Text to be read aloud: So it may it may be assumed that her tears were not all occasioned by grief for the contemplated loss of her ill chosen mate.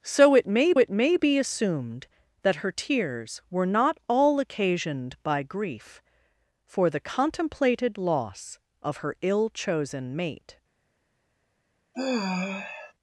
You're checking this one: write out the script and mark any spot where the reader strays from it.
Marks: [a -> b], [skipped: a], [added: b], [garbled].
So it may it may be assumed that her tears were not all occasioned by grief for the contemplated loss of her ill chosen mate.